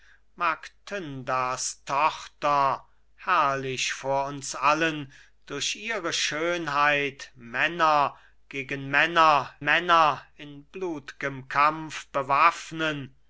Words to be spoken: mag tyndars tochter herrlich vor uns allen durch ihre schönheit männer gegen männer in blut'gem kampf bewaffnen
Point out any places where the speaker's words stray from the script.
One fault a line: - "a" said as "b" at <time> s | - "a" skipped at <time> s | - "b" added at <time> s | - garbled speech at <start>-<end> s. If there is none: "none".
- "männer" added at 9.6 s